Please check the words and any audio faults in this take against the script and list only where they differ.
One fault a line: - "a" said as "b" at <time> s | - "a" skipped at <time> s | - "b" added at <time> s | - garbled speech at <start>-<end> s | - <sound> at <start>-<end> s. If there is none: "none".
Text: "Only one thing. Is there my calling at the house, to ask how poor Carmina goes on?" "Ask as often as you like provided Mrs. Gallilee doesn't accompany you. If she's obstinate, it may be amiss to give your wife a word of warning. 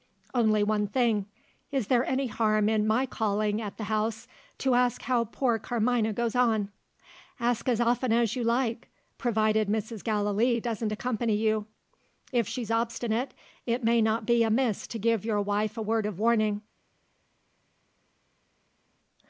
- "any harm in" added at 2.0 s
- "not" added at 14.0 s